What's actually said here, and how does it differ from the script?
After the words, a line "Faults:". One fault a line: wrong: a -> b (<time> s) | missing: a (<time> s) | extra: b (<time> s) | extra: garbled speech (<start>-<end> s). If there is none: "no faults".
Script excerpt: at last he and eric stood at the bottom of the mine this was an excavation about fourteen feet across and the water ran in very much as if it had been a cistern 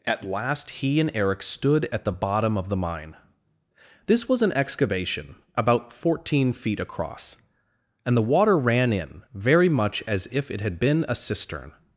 at last he and eric stood at the bottom of the mine this was an excavation about fourteen feet across and the water ran in very much as if it had been a cistern
Faults:
no faults